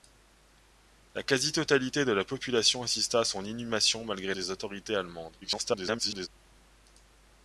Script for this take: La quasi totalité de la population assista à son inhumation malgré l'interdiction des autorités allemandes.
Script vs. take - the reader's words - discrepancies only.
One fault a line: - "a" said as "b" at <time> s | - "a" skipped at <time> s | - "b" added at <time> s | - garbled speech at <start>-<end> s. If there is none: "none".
- "l'interdiction" skipped at 4.3 s
- garbled speech at 5.4-6.3 s